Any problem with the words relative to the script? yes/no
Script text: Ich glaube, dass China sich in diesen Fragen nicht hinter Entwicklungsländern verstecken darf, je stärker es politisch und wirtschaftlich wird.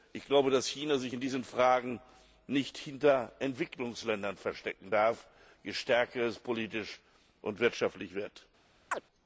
no